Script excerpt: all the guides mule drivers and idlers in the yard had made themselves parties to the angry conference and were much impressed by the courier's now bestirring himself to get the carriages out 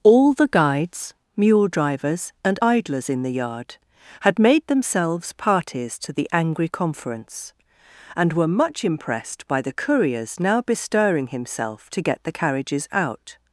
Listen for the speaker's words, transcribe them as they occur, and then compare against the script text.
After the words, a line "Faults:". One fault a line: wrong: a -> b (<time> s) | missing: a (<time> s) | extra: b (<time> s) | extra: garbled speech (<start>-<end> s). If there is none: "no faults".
all the guides mule drivers and idlers in the yard had made themselves parties to the angry conference and were much impressed by the courier's now bestirring himself to get the carriages out
Faults:
no faults